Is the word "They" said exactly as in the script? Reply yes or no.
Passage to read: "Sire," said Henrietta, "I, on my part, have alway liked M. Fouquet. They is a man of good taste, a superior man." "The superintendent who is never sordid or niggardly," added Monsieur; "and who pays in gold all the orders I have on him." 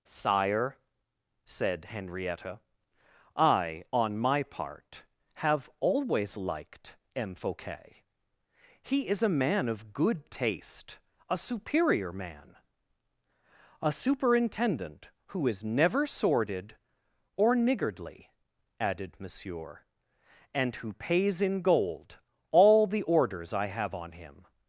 no